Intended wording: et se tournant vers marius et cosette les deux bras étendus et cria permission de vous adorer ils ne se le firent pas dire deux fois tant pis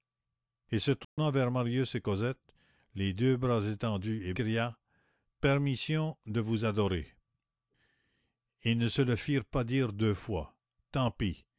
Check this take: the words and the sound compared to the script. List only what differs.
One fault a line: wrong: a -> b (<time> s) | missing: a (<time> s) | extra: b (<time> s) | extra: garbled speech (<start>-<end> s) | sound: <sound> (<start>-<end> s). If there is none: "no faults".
sound: dropout (1.0-1.2 s)